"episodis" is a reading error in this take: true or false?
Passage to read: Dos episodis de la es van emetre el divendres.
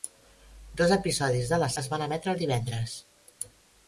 false